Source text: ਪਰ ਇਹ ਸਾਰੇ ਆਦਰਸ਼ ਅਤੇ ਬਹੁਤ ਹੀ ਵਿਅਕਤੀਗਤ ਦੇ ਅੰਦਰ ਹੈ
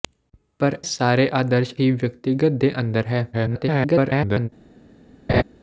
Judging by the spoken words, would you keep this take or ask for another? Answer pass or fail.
fail